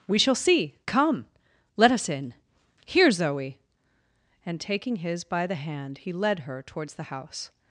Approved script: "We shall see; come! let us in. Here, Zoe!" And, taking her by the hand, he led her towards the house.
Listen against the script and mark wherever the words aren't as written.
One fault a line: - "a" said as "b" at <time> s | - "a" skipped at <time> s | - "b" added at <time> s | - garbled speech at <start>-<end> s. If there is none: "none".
- "her" said as "his" at 5.0 s